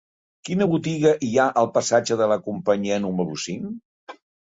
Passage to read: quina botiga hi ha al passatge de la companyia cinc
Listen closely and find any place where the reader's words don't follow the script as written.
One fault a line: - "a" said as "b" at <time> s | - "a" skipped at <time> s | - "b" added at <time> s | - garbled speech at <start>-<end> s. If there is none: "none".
- "número" added at 3.1 s